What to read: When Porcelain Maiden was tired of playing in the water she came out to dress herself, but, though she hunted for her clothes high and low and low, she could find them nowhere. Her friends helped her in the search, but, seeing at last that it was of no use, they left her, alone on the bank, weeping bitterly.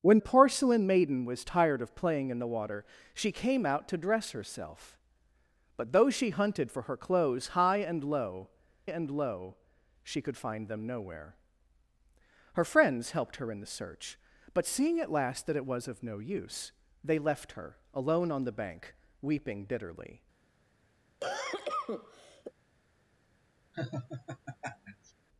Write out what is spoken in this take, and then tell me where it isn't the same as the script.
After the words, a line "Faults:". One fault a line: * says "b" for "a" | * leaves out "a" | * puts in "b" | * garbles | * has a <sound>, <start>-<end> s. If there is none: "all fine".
When Porcelain Maiden was tired of playing in the water she came out to dress herself, but, though she hunted for her clothes high and low and low, she could find them nowhere. Her friends helped her in the search, but, seeing at last that it was of no use, they left her, alone on the bank, weeping bitterly.
Faults:
* has a cough, 21.2-22.5 s
* has a laugh, 23.7-25.1 s